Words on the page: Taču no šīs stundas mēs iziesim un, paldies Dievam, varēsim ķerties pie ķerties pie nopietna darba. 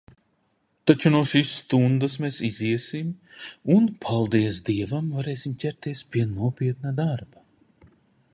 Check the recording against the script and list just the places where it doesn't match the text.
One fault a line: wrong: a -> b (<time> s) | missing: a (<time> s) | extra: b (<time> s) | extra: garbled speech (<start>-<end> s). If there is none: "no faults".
missing: ķerties pie (6.3 s)